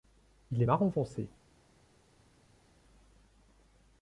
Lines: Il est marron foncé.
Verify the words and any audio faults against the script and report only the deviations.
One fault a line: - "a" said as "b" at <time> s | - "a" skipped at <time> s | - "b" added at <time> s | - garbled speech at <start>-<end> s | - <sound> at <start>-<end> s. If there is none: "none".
none